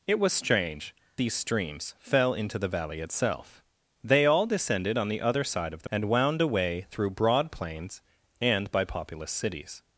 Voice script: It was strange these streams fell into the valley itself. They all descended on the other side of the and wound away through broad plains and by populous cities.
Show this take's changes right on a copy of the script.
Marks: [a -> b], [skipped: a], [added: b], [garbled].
It was strange these streams fell into the valley itself. They all descended on the other side of the and wound away through broad plains and by populous cities.